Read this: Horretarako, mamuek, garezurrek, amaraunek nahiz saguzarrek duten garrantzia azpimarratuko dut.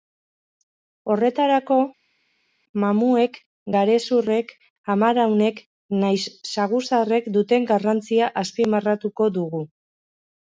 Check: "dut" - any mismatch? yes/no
yes